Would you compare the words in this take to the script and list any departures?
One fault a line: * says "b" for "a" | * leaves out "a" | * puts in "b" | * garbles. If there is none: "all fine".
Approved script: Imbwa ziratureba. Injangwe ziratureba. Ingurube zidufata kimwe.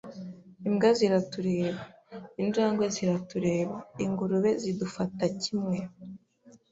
all fine